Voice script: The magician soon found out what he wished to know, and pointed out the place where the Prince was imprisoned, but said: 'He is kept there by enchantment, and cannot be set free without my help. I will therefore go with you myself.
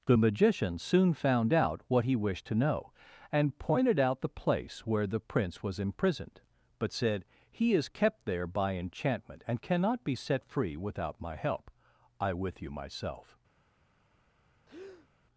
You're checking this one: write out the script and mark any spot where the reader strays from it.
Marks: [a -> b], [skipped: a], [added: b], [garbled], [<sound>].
The magician soon found out what he wished to know, and pointed out the place where the Prince was imprisoned, but said: 'He is kept there by enchantment, and cannot be set free without my help. I [skipped: will therefore go] with you myself. [breath]